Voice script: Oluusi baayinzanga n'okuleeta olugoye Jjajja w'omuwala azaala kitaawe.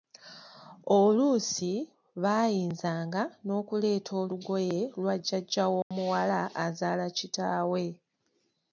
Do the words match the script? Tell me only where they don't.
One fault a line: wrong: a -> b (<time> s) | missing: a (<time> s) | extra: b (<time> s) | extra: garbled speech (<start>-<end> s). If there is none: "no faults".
extra: lwa (5.0 s)